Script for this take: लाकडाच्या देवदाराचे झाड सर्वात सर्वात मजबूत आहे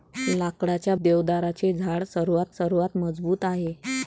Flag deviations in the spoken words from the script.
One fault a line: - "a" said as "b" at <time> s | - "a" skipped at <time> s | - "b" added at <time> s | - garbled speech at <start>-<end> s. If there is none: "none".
none